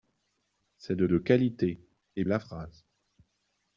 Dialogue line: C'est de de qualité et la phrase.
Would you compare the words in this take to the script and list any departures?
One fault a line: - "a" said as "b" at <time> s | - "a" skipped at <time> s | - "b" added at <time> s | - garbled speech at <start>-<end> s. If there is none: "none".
none